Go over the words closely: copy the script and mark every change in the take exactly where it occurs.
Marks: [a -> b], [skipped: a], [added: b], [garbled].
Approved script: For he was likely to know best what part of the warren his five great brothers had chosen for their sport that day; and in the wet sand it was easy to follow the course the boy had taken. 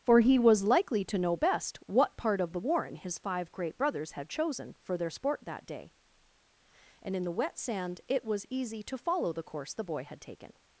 For he was likely to know best what part of the warren his five great brothers had chosen for their sport that day; and in the wet sand it was easy to follow the course the boy had taken.